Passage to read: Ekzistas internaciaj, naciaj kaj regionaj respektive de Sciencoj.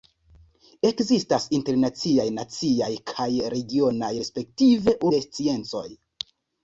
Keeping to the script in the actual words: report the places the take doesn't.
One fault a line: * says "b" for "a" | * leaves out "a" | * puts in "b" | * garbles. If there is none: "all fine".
all fine